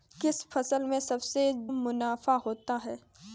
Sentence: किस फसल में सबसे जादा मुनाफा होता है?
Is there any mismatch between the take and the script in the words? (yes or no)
yes